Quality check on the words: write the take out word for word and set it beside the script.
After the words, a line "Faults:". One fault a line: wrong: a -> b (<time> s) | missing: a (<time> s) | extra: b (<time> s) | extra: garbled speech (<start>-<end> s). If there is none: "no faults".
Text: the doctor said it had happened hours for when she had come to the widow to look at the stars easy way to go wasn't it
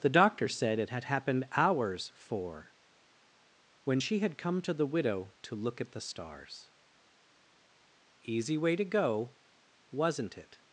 the doctor said it had happened hours for when she had come to the widow to look at the stars easy way to go wasn't it
Faults:
no faults